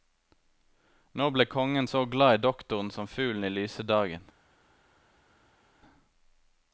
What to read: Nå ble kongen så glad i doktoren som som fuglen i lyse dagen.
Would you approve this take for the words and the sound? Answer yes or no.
no